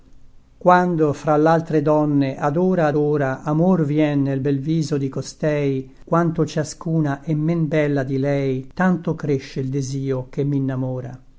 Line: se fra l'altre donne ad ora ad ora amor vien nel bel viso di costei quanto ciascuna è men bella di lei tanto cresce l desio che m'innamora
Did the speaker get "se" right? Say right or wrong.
wrong